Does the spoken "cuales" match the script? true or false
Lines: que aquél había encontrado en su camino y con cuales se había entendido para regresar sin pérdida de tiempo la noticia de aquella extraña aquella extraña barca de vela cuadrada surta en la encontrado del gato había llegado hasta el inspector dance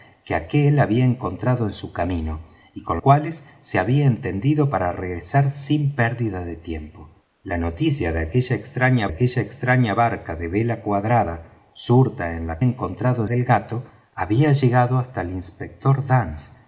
true